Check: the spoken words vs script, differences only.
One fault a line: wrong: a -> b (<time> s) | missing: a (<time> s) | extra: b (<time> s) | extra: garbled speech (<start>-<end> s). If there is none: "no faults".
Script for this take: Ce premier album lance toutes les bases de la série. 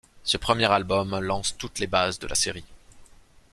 no faults